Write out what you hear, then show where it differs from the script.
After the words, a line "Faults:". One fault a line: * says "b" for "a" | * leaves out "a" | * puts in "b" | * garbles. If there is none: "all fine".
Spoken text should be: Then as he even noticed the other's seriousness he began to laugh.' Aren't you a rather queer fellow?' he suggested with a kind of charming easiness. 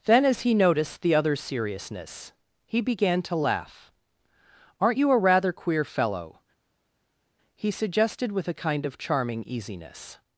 Then as he noticed the other's seriousness he began to laugh.' Aren't you a rather queer fellow?' he suggested with a kind of charming easiness.
Faults:
* leaves out "even"